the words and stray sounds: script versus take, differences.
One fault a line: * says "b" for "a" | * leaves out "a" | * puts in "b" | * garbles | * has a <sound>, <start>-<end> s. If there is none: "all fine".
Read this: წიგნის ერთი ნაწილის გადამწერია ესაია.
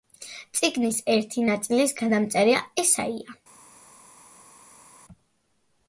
all fine